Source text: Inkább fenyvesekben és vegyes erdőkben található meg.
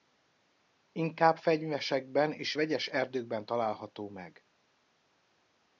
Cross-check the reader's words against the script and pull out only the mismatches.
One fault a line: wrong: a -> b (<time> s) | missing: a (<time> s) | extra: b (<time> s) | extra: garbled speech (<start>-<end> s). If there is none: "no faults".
no faults